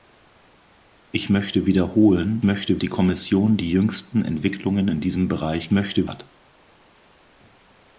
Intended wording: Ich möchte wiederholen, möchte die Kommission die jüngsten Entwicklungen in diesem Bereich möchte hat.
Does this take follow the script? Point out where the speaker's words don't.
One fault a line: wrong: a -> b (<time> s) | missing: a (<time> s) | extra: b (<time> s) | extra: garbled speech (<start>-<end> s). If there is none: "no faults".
no faults